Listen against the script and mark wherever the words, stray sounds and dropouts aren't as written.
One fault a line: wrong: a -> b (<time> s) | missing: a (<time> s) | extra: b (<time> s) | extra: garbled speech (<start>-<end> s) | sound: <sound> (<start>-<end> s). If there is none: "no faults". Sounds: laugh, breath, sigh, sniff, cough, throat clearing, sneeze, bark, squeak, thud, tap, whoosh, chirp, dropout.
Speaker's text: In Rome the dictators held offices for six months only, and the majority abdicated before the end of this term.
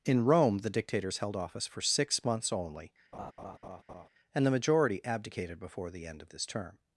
wrong: offices -> office (1.4 s)
sound: laugh (3.1-4.1 s)